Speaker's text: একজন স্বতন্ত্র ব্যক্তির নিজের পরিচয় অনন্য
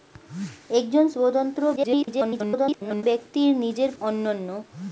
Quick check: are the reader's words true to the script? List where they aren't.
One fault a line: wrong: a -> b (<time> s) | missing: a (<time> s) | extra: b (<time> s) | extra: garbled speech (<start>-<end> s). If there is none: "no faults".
extra: garbled speech (1.8-3.0 s)
missing: পরিচয় (3.9 s)